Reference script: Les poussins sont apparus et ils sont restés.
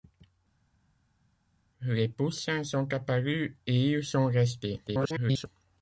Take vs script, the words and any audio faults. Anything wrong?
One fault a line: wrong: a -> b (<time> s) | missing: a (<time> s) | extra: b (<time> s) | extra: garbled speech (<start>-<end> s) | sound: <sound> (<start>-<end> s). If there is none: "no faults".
extra: garbled speech (4.9-5.5 s)